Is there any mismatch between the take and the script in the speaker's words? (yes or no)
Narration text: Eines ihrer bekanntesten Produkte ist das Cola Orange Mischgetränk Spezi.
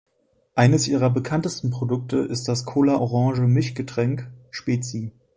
no